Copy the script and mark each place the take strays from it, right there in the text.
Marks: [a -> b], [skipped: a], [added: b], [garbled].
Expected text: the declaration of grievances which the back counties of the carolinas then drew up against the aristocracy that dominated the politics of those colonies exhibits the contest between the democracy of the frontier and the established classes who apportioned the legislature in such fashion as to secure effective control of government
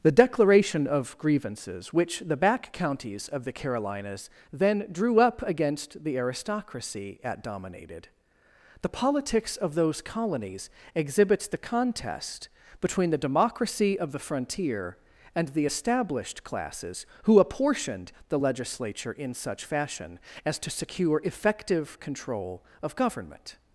the declaration of grievances which the back counties of the carolinas then drew up against the aristocracy [that -> at] dominated the politics of those colonies exhibits the contest between the democracy of the frontier and the established classes who apportioned the legislature in such fashion as to secure effective control of government